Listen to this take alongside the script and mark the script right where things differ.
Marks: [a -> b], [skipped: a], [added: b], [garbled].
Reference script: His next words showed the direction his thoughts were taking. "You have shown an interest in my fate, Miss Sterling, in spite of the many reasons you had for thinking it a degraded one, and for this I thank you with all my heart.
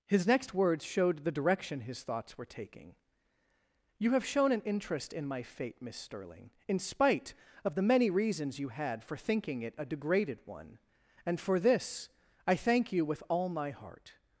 His next words showed the direction his thoughts were taking. "You have shown an interest in my fate, Miss Sterling, in spite of the many reasons you had for thinking it a degraded one, and for this I thank you with all my heart.